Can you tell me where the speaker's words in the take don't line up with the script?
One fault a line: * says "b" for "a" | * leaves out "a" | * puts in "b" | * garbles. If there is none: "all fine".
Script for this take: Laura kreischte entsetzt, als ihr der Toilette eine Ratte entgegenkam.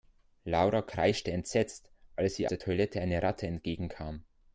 all fine